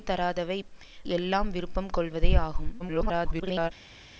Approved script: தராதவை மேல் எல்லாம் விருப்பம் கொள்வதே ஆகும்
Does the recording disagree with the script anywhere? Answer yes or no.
yes